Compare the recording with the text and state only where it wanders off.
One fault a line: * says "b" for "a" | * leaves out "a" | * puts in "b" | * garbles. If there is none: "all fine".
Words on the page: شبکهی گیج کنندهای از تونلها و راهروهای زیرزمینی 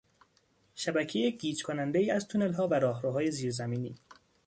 all fine